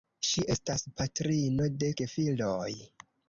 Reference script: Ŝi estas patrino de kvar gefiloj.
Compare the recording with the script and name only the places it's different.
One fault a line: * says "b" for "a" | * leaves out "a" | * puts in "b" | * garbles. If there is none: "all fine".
* leaves out "kvar"